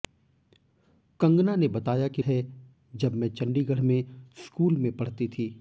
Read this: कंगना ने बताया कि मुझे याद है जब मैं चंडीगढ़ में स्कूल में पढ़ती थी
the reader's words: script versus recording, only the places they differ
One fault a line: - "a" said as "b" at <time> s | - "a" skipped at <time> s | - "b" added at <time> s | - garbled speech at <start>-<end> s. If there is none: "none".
- "मुझे याद" skipped at 2.2 s